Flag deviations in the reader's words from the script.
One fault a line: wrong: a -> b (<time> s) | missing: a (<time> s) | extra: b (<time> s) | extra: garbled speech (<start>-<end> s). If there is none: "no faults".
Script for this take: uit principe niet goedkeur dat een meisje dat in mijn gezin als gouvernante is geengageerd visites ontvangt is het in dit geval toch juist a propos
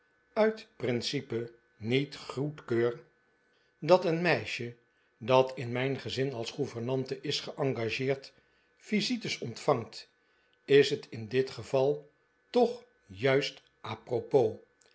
no faults